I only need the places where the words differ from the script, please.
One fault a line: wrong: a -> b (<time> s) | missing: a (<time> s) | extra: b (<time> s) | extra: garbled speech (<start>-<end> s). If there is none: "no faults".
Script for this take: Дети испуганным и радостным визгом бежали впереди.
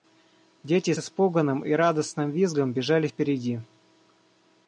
no faults